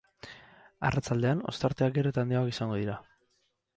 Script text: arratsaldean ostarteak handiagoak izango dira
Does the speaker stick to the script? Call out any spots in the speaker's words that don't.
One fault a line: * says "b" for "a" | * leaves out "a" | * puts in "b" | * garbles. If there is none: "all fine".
* puts in "gero eta"